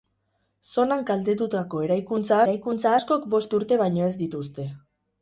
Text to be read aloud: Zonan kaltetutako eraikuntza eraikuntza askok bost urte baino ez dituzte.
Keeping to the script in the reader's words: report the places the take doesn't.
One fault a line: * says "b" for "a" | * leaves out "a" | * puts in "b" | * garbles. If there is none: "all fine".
all fine